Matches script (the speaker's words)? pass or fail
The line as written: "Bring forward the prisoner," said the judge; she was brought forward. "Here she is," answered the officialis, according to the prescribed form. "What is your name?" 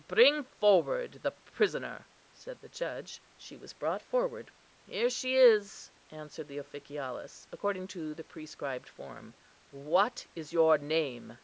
pass